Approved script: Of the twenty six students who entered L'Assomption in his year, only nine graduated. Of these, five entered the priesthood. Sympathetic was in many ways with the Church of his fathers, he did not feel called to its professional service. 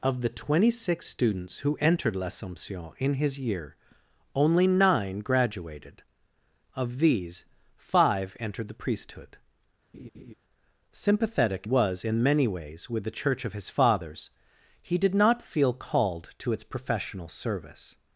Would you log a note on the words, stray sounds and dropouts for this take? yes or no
yes